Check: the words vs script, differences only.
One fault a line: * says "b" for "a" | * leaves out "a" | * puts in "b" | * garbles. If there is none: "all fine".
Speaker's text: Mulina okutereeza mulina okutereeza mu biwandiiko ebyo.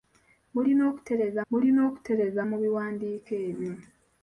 all fine